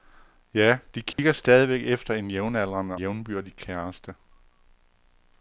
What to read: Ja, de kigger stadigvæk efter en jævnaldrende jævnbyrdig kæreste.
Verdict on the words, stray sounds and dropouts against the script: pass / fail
fail